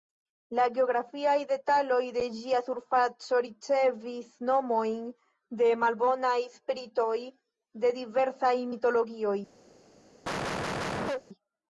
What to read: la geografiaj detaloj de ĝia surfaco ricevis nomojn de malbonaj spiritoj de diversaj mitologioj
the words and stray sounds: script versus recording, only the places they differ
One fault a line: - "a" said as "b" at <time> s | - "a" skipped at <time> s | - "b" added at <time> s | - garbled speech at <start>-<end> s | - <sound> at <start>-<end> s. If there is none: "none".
- cough at 10.2-11.2 s